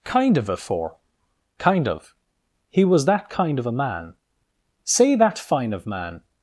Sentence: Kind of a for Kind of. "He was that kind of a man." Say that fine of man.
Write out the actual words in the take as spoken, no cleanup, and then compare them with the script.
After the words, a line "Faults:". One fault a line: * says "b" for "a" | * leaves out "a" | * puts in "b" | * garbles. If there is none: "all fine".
Kind of a for Kind of. "He was that kind of a man." Say that fine of man.
Faults:
all fine